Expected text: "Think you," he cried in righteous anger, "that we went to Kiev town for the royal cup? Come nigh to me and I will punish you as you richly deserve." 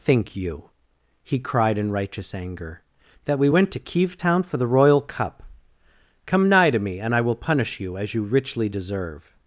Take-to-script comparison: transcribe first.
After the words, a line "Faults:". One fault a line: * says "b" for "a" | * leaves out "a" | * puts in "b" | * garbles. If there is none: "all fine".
"Think you," he cried in righteous anger, "that we went to Kiev town for the royal cup? Come nigh to me and I will punish you as you richly deserve."
Faults:
all fine